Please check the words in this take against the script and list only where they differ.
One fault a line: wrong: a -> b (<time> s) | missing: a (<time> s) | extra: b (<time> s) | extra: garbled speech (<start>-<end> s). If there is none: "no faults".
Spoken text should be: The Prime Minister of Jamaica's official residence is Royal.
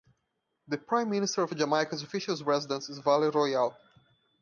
extra: Vale (3.0 s)